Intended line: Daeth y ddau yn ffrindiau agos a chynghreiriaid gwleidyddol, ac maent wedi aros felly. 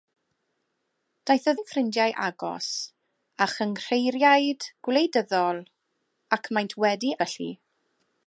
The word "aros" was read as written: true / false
false